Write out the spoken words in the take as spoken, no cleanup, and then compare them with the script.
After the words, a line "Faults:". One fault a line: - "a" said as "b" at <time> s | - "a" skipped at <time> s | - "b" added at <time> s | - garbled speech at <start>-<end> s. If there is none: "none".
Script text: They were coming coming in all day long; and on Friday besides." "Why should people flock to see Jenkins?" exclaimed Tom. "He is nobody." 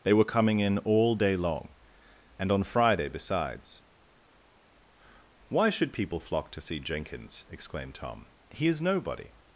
They were coming in all day long; and on Friday besides." "Why should people flock to see Jenkins?" exclaimed Tom. "He is nobody."
Faults:
- "coming" skipped at 0.6 s